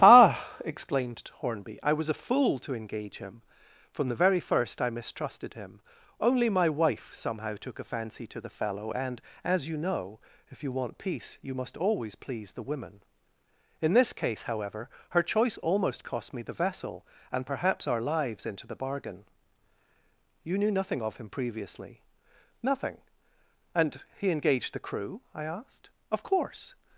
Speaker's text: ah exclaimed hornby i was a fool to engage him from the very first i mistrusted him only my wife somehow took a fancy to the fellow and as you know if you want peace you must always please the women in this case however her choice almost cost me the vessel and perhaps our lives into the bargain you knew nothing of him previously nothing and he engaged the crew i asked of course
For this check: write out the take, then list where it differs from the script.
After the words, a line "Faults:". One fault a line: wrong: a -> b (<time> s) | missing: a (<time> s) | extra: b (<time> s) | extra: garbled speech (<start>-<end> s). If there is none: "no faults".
ah exclaimed hornby i was a fool to engage him from the very first i mistrusted him only my wife somehow took a fancy to the fellow and as you know if you want peace you must always please the women in this case however her choice almost cost me the vessel and perhaps our lives into the bargain you knew nothing of him previously nothing and he engaged the crew i asked of course
Faults:
no faults